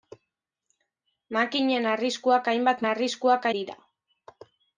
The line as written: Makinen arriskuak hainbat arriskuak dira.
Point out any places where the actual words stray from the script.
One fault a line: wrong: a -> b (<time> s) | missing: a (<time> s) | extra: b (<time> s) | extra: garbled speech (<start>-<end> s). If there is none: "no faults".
no faults